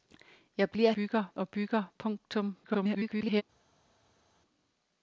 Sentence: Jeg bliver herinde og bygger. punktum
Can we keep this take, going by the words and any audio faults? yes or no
no